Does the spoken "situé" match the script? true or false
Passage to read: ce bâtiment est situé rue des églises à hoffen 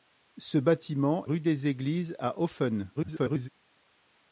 false